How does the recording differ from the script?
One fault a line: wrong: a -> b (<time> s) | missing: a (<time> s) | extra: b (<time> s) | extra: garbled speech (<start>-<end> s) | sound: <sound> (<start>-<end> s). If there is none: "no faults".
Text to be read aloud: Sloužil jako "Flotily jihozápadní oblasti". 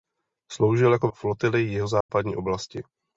sound: dropout (2.0-2.1 s)